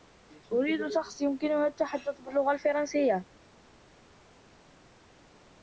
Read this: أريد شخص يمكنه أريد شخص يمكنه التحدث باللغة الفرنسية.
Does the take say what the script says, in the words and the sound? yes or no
no